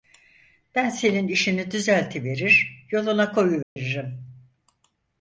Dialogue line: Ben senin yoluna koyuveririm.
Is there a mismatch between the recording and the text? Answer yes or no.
yes